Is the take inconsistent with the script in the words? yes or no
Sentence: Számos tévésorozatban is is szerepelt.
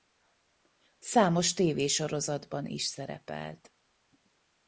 yes